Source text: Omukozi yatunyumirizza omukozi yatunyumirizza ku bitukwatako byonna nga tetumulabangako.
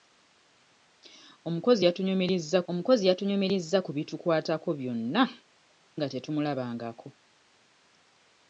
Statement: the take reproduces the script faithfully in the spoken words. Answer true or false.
true